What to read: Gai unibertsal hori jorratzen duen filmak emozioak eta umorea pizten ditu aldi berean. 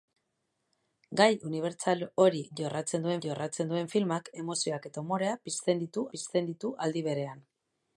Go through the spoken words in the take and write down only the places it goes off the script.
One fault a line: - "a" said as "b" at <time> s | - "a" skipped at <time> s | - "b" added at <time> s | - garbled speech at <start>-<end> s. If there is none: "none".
- "jorratzen duen" added at 3.3 s
- "pizten ditu" added at 6.1 s